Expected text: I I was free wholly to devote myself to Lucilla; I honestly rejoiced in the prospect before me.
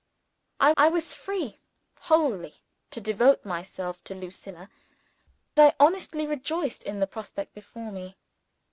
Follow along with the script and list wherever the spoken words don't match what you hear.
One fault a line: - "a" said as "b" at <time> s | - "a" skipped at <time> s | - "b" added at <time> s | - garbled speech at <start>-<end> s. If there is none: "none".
none